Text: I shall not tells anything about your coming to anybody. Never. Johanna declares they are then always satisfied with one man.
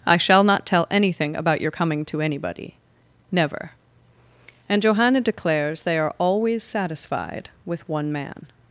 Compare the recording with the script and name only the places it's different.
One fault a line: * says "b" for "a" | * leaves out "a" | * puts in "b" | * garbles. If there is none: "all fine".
* says "tell" for "tells"
* puts in "And"
* leaves out "then"